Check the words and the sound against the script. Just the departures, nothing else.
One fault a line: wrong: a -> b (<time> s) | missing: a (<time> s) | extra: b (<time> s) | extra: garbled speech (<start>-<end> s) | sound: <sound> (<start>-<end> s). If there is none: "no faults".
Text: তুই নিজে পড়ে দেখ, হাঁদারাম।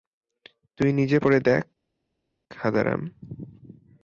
no faults